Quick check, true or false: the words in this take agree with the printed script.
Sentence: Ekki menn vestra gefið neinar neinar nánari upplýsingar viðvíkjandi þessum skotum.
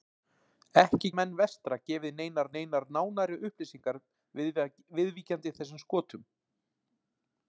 true